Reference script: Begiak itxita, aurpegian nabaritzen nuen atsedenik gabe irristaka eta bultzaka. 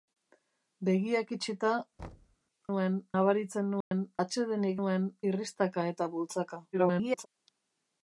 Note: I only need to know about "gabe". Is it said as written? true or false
false